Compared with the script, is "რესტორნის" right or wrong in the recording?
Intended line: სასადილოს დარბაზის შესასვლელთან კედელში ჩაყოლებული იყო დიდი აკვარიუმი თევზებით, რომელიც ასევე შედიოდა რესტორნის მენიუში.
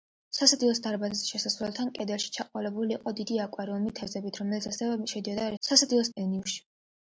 wrong